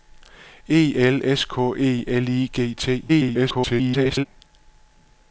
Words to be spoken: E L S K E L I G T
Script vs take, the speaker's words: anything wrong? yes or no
yes